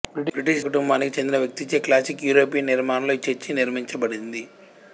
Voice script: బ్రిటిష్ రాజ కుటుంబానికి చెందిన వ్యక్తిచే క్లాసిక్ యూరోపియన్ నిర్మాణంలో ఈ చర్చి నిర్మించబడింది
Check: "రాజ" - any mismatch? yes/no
yes